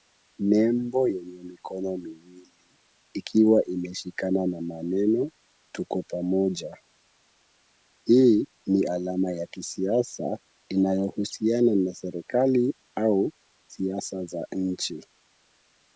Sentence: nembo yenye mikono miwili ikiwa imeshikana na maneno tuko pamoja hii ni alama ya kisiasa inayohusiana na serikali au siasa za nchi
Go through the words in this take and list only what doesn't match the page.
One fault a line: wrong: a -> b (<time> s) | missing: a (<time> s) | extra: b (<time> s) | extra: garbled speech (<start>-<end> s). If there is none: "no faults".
no faults